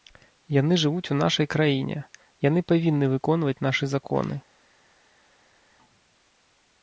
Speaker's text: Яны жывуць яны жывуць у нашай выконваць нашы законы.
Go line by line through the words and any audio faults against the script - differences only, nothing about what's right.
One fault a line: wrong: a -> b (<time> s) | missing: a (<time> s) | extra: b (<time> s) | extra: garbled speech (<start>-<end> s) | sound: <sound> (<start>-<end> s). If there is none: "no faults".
wrong: яны жывуць у нашай -> у нашай краіне яны павінны (1.1 s)